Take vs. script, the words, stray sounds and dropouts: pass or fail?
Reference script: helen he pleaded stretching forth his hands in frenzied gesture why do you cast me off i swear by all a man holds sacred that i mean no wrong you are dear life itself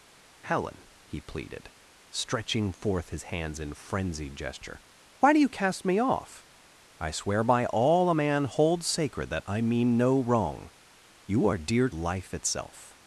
pass